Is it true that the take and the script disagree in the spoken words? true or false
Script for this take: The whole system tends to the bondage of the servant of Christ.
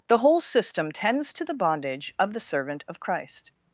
false